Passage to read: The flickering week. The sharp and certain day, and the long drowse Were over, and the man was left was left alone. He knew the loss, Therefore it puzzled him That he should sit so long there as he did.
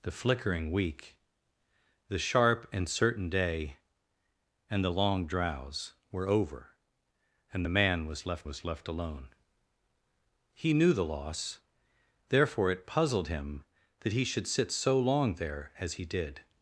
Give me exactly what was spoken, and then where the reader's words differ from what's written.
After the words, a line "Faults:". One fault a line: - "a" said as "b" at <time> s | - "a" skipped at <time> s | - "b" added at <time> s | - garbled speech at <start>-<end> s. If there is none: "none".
The flickering week. The sharp and certain day, and the long drowse Were over, and the man was left was left alone. He knew the loss, Therefore it puzzled him That he should sit so long there as he did.
Faults:
none